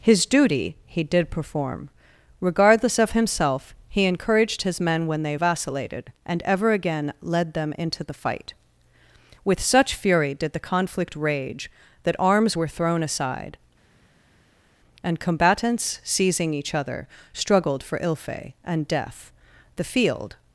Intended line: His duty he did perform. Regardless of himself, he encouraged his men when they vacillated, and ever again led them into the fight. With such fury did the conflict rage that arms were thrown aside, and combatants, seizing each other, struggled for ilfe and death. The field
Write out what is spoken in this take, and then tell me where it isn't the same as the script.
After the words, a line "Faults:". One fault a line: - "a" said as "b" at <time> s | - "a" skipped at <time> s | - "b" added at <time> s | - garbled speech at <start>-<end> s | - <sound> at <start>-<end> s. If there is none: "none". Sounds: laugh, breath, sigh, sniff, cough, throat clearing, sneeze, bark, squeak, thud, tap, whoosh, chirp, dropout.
His duty he did perform. Regardless of himself, he encouraged his men when they vacillated, and ever again led them into the fight. With such fury did the conflict rage that arms were thrown aside, and combatants, seizing each other, struggled for ilfe and death. The field
Faults:
none